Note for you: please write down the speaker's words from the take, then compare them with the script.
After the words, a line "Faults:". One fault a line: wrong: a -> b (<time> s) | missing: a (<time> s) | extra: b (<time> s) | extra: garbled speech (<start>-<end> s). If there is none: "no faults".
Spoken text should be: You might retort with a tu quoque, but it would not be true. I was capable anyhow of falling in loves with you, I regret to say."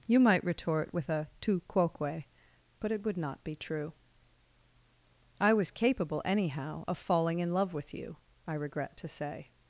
You might retort with a tu quoque, but it would not be true. I was capable anyhow of falling in love with you, I regret to say."
Faults:
wrong: loves -> love (7.5 s)